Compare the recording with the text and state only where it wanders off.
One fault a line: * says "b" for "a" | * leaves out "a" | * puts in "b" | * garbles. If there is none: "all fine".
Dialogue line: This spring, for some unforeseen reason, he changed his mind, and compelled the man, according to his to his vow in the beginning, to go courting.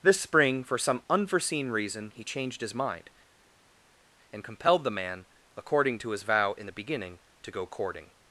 * leaves out "to his"